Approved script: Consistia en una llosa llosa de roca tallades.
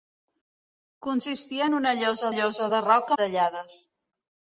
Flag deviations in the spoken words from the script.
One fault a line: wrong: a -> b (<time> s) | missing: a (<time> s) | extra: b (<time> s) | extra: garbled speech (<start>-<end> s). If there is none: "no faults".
no faults